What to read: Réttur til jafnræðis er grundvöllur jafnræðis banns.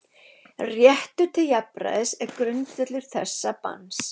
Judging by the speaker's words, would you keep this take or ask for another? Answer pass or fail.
fail